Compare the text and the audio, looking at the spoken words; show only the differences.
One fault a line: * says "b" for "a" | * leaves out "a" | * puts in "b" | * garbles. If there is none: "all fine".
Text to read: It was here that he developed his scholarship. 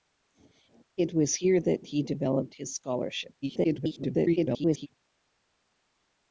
* garbles